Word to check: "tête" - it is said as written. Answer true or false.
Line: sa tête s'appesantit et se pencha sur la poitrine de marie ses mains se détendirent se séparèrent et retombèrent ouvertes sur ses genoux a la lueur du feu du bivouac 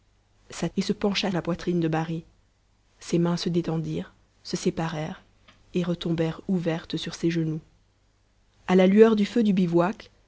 false